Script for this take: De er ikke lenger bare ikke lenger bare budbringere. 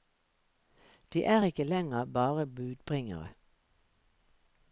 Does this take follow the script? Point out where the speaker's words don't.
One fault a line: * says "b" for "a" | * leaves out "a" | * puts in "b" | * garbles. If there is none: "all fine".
* leaves out "ikke lenger bare"